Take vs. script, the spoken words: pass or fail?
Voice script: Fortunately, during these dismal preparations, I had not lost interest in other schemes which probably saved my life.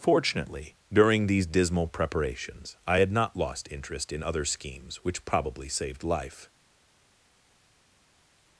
fail